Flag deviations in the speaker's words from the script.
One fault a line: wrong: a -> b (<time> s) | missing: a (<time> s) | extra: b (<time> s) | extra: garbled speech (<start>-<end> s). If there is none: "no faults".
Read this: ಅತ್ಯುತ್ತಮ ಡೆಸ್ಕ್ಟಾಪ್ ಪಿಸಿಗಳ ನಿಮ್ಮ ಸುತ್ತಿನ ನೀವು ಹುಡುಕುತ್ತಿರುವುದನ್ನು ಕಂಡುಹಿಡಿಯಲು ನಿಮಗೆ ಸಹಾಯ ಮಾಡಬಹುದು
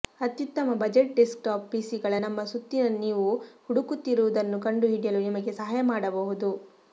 extra: ಬಜೆಟ್ (0.8 s)
wrong: ನಿಮ್ಮ -> ನಮ್ಮ (2.2 s)